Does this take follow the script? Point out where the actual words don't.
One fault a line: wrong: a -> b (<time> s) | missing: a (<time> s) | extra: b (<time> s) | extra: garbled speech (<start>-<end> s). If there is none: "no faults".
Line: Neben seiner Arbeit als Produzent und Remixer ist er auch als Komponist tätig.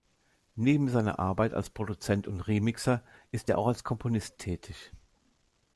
no faults